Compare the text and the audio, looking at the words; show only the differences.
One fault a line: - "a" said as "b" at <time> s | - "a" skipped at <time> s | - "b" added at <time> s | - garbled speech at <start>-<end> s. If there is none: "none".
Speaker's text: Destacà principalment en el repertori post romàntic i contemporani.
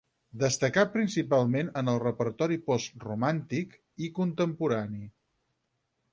none